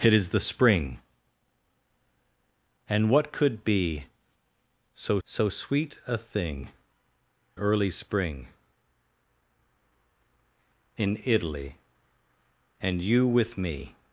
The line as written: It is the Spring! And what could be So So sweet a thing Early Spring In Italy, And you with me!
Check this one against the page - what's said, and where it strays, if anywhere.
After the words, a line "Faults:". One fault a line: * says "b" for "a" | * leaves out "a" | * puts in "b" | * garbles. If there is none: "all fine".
It is the Spring! And what could be So So sweet a thing Early Spring In Italy, And you with me!
Faults:
all fine